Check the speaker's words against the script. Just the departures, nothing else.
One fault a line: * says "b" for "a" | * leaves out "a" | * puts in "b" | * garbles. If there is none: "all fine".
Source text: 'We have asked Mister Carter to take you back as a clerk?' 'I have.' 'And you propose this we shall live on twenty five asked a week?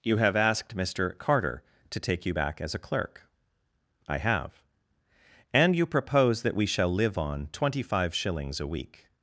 * says "You" for "We"
* says "that" for "this"
* says "shillings" for "asked"